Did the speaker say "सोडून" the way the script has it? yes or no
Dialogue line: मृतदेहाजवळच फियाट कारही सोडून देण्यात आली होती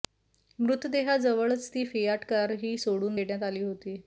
yes